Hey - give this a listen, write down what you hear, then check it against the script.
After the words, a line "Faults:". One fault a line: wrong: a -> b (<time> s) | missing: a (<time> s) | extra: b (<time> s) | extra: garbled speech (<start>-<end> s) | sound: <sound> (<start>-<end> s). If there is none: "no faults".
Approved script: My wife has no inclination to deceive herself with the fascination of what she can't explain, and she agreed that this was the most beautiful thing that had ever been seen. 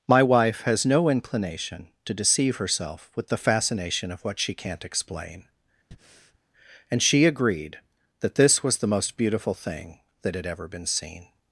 My wife has no inclination to deceive herself with the fascination of what she can't explain, and she agreed that this was the most beautiful thing that had ever been seen.
Faults:
sound: breath (5.9-6.4 s)